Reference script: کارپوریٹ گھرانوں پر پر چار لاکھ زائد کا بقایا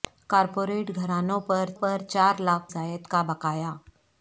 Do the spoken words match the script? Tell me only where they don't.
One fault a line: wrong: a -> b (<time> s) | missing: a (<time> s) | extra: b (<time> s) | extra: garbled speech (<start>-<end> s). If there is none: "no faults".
no faults